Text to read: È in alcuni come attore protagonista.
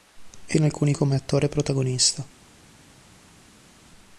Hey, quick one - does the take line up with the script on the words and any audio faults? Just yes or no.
yes